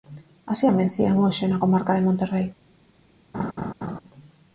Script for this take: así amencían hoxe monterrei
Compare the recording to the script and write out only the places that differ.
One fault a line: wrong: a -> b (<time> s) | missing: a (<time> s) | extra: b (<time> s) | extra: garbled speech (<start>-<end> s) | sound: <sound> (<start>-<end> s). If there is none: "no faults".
extra: na comarca de (1.5 s)
sound: laugh (3.3-4.0 s)